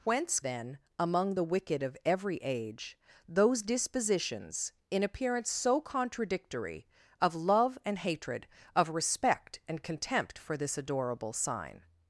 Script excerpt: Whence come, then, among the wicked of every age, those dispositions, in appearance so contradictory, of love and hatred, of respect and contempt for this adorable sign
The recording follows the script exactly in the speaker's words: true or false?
false